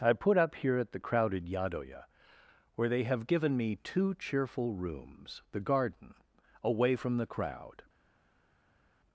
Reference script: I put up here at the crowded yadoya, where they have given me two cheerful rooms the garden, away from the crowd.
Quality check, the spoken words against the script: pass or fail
pass